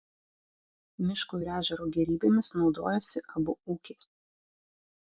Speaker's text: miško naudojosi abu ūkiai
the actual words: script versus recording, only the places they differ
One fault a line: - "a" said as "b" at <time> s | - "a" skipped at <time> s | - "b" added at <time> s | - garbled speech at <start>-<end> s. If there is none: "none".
- "ir ežero gėrybėmis" added at 1.4 s